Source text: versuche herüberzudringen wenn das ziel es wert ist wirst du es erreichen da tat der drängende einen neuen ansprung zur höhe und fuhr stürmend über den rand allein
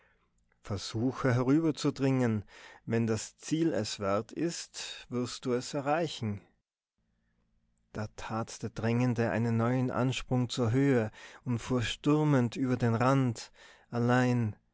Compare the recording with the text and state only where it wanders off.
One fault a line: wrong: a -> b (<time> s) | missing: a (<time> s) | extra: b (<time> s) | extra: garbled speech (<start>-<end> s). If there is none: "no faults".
no faults